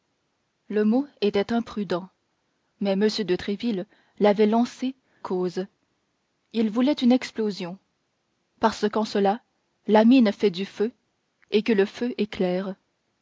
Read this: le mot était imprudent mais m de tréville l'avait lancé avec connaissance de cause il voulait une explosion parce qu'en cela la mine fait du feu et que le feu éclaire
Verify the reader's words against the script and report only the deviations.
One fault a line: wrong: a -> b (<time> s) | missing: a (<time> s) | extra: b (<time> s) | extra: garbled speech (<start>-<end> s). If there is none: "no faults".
missing: avec connaissance de (5.0 s)